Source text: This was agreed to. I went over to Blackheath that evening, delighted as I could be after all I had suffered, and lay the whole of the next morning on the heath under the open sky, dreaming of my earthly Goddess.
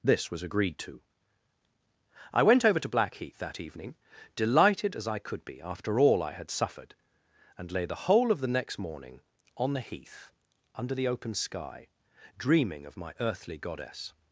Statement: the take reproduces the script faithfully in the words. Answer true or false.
true